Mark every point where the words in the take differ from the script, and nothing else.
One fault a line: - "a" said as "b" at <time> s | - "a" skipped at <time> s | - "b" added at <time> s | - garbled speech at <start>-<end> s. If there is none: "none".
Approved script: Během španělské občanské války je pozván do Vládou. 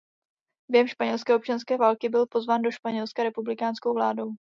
- "je" said as "byl" at 2.1 s
- "Španělska republikánskou" added at 2.7 s